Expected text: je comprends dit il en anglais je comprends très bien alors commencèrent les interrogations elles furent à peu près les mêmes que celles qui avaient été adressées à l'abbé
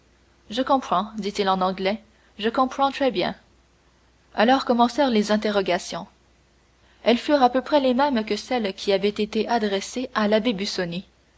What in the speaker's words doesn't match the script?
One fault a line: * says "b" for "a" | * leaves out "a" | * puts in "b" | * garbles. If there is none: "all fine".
all fine